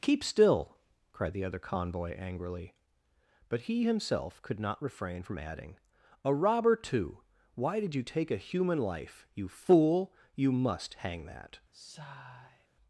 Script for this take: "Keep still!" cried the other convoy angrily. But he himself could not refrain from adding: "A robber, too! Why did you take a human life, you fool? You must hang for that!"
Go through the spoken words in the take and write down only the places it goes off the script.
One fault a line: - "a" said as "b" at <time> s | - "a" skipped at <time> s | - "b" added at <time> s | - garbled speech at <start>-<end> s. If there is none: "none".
- "for" skipped at 11.2 s